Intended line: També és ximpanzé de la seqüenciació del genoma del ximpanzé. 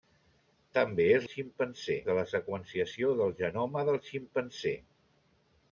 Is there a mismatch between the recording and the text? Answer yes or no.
no